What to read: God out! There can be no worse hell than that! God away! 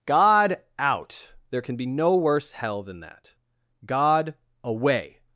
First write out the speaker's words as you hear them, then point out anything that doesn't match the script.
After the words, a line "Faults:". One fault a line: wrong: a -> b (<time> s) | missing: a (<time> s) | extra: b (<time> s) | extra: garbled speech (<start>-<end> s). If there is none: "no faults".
God out! There can be no worse hell than that! God away!
Faults:
no faults